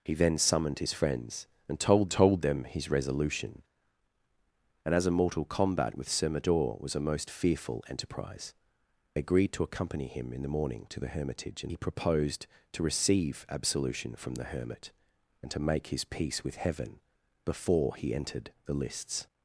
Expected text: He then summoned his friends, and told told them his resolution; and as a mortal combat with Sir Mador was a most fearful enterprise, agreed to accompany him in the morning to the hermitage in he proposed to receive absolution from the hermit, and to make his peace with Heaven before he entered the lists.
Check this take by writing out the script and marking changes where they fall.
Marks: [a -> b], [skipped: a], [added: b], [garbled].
He then summoned his friends, and told told them his resolution; and as a mortal combat with Sir Mador was a most fearful enterprise, agreed to accompany him in the morning to the hermitage in he proposed to receive absolution from the hermit, and to make his peace with Heaven before he entered the lists.